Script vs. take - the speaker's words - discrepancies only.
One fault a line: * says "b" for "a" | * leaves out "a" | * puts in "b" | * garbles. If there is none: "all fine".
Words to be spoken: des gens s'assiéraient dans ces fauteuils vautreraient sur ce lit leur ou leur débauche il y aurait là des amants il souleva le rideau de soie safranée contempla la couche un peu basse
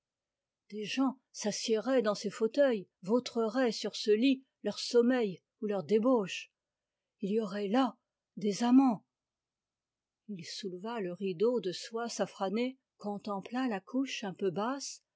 * puts in "sommeil"